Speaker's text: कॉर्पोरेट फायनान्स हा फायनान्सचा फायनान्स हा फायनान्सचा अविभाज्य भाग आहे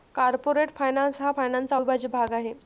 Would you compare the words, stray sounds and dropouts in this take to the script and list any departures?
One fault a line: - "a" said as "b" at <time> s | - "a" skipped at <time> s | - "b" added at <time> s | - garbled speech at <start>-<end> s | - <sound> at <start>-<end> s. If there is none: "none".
- "फायनान्स हा फायनान्सचा" skipped at 1.8 s